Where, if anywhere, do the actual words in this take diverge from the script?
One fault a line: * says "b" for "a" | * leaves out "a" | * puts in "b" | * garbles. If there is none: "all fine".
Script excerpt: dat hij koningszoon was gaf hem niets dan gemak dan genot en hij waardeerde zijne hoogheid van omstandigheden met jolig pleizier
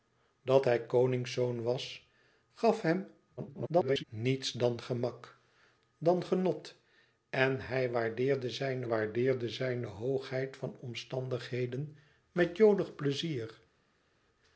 * garbles
* puts in "waardeerde zijne"